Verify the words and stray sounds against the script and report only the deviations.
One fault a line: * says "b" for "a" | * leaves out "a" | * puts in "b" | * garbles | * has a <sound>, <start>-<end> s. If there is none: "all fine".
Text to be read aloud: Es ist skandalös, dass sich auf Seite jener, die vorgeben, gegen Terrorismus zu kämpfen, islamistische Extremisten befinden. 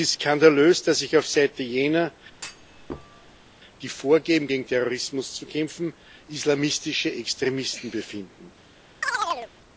* has a thud, 2.3-3.5 s
* has a chirp, 9.0-9.5 s